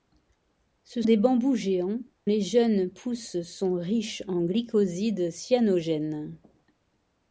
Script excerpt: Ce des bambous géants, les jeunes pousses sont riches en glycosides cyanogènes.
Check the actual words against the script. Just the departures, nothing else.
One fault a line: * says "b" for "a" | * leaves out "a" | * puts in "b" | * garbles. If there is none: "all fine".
all fine